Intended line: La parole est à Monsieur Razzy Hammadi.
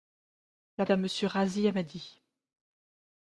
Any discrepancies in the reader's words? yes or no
yes